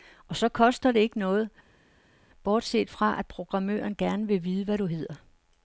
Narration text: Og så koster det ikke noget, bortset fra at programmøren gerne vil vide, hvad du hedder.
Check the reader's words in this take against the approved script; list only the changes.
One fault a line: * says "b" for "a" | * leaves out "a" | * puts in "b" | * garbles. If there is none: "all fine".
all fine